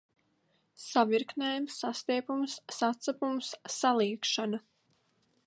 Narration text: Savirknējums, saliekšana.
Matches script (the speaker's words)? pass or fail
fail